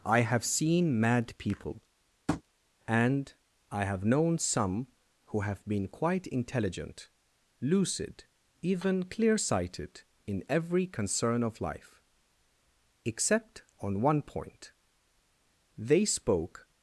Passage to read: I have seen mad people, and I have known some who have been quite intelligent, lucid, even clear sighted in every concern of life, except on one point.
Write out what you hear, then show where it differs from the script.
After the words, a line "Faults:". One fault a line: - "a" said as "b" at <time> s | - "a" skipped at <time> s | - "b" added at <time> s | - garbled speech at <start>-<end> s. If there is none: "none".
I have seen mad people, and I have known some who have been quite intelligent, lucid, even clear sighted in every concern of life, except on one point. They spoke
Faults:
- "They spoke" added at 15.8 s